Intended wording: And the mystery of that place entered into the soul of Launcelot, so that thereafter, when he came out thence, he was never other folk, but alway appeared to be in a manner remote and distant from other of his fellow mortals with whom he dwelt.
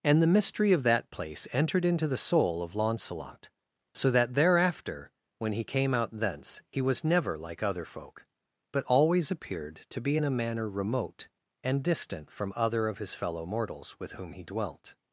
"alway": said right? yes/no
no